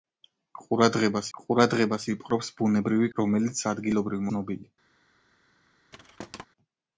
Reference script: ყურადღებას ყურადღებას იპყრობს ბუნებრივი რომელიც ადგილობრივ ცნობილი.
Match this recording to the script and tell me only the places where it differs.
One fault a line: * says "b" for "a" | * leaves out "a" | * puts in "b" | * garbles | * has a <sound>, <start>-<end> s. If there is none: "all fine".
* has a thud, 5.9-6.5 s